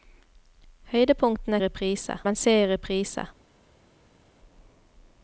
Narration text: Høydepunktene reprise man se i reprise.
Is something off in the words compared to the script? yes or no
no